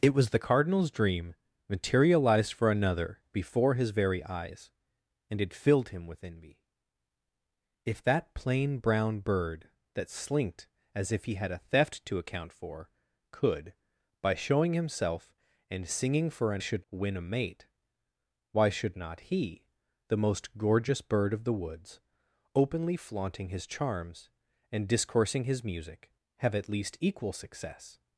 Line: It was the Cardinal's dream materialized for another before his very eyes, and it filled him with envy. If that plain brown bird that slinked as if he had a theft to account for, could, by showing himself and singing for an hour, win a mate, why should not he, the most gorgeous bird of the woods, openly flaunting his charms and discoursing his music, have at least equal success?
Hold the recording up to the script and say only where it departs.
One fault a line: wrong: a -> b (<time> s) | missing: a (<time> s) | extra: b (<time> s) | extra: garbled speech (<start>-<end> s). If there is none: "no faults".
wrong: hour -> should (16.6 s)